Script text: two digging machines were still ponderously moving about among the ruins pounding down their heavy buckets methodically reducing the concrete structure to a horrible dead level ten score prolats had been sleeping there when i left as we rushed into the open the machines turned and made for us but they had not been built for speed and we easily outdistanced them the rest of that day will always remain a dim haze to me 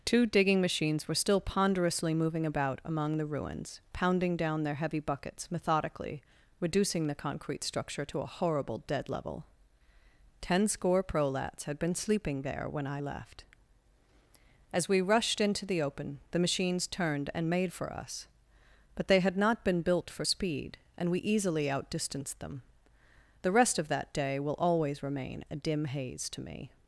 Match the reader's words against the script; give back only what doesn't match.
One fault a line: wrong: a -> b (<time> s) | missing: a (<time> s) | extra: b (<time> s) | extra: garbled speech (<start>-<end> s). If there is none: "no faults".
no faults